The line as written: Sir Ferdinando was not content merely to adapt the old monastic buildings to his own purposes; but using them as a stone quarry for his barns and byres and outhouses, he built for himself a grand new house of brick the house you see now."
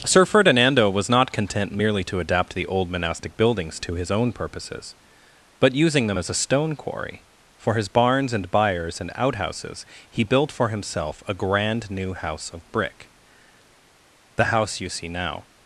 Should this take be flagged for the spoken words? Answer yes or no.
no